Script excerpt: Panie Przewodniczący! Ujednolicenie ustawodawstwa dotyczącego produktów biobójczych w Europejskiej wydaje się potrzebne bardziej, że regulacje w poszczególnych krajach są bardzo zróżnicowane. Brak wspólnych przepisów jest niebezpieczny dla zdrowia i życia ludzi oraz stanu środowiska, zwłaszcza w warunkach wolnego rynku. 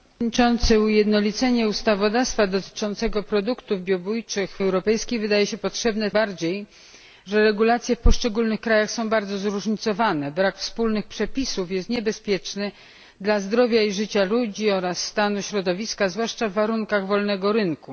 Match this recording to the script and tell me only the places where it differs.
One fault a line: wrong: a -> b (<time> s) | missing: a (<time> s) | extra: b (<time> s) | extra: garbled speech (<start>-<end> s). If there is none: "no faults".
no faults